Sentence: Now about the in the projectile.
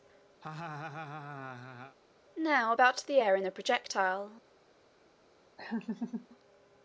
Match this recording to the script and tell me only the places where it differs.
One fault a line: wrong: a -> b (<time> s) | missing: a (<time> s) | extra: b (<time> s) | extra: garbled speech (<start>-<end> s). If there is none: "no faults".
extra: air (3.2 s)